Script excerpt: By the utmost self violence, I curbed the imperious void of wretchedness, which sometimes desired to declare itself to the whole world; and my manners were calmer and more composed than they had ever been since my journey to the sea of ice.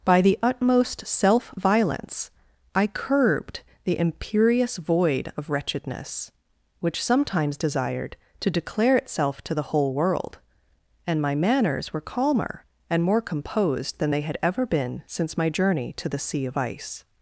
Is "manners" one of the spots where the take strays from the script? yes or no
no